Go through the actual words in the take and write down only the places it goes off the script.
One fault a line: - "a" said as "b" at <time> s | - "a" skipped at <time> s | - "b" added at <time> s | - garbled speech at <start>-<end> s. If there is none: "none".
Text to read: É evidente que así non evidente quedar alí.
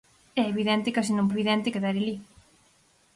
none